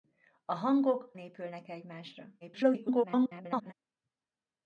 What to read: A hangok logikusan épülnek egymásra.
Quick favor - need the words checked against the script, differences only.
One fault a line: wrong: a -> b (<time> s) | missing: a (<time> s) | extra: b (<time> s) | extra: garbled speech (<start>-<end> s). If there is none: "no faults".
missing: logikusan (1.1 s)
extra: garbled speech (2.4-3.7 s)